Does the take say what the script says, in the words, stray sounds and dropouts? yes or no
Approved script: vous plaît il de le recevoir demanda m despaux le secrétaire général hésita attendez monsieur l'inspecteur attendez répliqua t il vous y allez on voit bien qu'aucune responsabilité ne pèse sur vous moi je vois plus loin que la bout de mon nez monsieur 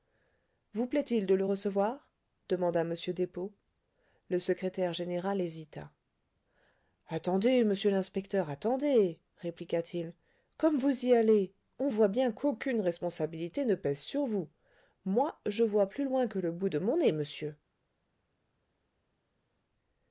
no